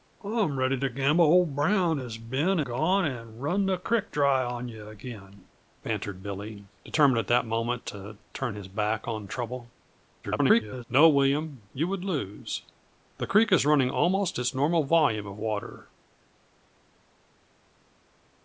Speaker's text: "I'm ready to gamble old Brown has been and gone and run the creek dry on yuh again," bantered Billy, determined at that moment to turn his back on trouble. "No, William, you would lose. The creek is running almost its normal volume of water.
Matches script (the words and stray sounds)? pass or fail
fail